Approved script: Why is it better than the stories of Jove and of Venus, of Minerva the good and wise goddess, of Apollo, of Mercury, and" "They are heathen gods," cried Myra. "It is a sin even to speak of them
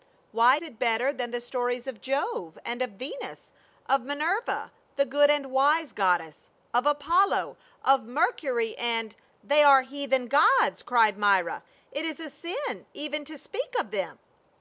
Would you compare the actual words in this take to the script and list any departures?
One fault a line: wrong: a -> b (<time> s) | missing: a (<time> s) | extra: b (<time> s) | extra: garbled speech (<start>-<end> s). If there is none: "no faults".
missing: is (0.6 s)